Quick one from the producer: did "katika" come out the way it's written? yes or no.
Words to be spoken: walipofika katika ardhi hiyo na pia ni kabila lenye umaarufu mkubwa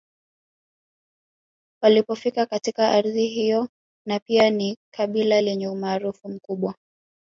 yes